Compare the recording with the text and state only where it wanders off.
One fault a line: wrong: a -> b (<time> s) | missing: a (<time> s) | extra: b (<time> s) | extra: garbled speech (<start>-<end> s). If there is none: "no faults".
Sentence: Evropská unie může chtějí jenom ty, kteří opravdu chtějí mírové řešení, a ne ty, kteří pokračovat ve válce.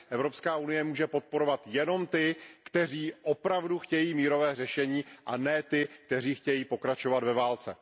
wrong: chtějí -> podporovat (1.1 s)
extra: chtějí (6.3 s)